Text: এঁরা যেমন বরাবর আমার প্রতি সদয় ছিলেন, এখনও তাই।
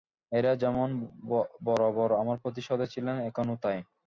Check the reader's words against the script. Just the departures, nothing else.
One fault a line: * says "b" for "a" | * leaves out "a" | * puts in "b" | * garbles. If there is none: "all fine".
all fine